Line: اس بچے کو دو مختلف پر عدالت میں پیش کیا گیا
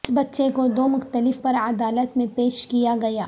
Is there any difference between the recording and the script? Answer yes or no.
no